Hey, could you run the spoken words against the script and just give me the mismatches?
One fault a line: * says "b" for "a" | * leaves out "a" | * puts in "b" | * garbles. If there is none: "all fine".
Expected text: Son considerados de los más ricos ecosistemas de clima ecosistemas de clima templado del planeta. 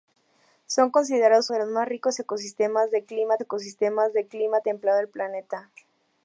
all fine